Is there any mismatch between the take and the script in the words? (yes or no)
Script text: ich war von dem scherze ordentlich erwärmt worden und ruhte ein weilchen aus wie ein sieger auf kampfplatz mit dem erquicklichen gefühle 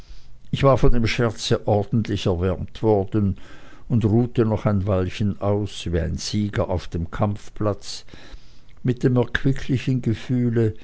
yes